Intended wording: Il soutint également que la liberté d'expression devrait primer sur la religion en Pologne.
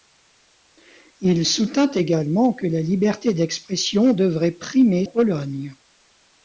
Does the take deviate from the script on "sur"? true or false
true